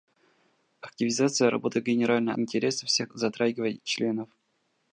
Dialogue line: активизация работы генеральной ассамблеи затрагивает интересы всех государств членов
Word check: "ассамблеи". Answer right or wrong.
wrong